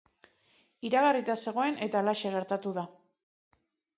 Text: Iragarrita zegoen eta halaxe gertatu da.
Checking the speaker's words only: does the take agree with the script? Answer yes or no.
yes